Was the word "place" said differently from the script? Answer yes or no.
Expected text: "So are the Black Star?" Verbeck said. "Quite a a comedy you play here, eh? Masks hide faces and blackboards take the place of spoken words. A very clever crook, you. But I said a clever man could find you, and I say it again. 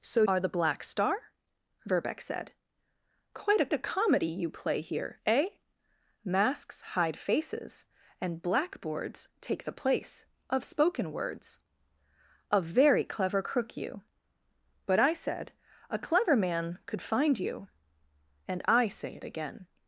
no